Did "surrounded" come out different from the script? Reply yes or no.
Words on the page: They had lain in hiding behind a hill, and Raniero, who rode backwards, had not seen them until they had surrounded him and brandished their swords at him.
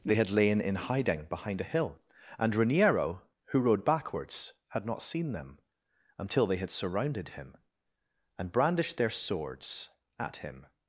no